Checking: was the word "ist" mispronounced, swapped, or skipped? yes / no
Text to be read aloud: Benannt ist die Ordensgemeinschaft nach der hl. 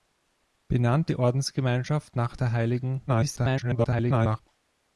yes